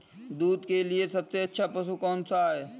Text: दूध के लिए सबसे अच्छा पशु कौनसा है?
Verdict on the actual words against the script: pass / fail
pass